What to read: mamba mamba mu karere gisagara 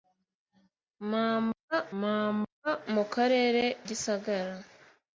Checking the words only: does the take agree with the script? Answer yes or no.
yes